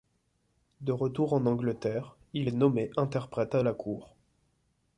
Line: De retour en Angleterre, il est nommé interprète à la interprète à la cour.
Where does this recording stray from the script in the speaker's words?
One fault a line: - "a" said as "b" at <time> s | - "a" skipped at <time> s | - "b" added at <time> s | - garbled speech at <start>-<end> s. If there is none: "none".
- "interprète à la" skipped at 3.7 s